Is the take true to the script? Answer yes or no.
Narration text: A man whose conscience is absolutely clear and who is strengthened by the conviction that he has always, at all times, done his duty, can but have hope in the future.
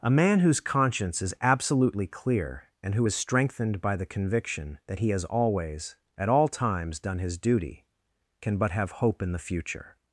yes